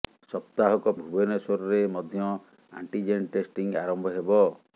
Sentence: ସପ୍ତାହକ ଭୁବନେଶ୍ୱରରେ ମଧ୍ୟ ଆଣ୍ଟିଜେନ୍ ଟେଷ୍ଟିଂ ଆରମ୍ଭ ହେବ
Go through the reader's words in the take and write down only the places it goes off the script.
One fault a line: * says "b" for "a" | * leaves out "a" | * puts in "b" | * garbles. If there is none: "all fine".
all fine